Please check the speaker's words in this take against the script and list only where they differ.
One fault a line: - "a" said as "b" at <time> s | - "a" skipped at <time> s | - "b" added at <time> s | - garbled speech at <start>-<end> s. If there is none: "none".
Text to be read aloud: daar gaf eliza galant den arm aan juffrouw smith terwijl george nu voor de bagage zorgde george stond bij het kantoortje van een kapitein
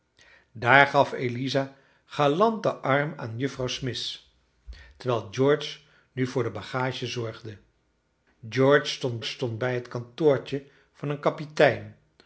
- "stond" added at 9.2 s